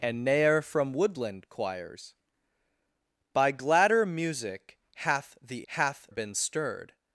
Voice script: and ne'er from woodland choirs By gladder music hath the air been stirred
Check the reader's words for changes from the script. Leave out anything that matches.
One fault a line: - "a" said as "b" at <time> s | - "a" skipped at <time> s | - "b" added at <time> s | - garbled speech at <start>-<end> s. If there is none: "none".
- "air" said as "hath" at 5.7 s